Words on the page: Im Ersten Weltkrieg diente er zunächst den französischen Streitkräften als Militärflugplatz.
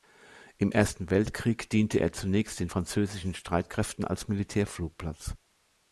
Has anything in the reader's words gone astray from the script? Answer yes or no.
no